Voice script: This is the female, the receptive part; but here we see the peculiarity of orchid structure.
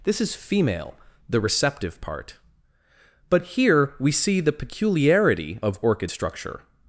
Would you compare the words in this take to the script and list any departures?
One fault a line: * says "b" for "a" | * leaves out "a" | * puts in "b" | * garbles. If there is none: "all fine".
* leaves out "the"